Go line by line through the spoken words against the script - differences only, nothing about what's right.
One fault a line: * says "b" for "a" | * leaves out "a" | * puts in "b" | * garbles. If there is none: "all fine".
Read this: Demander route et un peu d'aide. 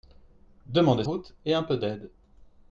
all fine